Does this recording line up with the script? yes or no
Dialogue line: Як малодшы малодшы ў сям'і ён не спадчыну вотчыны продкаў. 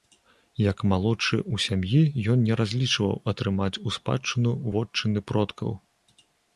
no